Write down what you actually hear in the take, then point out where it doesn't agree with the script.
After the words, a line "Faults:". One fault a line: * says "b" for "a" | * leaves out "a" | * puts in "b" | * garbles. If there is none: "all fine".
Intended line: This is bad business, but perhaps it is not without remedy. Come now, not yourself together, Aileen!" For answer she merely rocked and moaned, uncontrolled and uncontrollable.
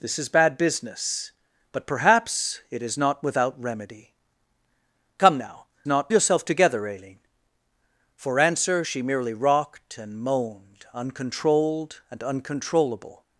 This is bad business, but perhaps it is not without remedy. Come now, not yourself together, Aileen!" For answer she merely rocked and moaned, uncontrolled and uncontrollable.
Faults:
all fine